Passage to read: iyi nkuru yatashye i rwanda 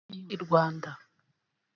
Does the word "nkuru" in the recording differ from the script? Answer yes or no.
yes